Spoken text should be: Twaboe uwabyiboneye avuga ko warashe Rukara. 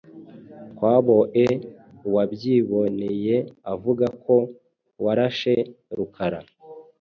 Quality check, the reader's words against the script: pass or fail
pass